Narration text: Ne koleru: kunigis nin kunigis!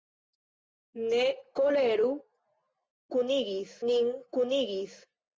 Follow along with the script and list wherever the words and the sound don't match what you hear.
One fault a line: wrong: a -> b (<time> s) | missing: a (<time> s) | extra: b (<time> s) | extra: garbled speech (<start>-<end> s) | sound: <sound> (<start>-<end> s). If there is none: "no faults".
no faults